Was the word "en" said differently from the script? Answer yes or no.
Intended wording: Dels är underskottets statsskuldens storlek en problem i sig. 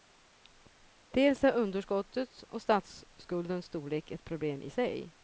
yes